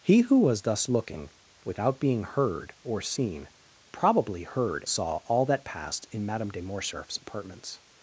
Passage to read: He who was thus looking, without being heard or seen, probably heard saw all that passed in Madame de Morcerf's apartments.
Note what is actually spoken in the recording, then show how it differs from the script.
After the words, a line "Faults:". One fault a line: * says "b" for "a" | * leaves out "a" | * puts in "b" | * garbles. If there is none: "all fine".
He who was thus looking, without being heard or seen, probably heard saw all that passed in Madame de Morcerf's apartments.
Faults:
all fine